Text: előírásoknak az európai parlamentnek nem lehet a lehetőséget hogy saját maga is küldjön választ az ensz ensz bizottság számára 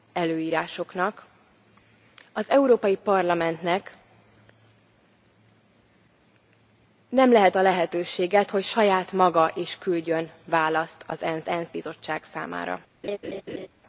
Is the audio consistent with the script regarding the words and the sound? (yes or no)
no